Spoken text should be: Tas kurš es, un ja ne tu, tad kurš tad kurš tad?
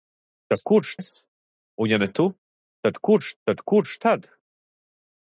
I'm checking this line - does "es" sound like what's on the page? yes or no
yes